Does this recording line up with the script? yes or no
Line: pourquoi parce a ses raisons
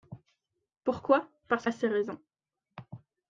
yes